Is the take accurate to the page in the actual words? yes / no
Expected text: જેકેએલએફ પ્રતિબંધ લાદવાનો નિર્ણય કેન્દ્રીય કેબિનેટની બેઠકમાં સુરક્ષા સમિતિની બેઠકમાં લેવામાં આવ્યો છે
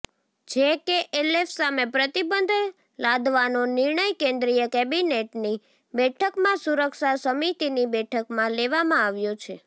no